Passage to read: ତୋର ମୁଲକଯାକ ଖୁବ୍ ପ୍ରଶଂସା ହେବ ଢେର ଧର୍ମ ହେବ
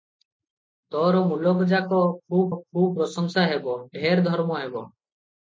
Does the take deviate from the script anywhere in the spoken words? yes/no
yes